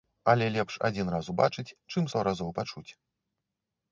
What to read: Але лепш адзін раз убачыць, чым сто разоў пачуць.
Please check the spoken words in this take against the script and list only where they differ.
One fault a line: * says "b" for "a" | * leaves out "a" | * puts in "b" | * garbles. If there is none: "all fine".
all fine